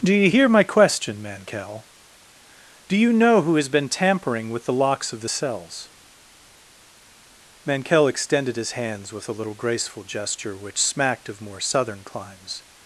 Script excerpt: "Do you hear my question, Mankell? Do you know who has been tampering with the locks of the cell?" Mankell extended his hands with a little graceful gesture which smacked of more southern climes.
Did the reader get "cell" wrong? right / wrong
wrong